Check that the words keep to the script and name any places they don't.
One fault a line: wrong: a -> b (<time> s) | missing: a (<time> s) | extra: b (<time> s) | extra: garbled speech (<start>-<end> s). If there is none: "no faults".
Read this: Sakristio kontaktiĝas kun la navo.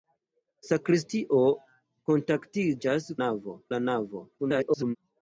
wrong: kun -> navo (3.2 s)
extra: garbled speech (4.4-5.0 s)